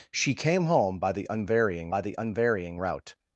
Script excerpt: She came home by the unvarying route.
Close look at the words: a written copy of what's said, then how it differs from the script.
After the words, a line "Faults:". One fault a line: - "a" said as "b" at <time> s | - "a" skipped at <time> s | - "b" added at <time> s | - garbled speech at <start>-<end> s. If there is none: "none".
She came home by the unvarying by the unvarying route.
Faults:
- "by the unvarying" added at 1.9 s